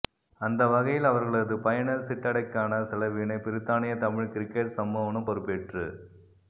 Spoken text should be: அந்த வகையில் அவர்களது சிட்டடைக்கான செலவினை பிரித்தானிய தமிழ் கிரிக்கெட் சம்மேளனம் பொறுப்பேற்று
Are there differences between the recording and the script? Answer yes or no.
yes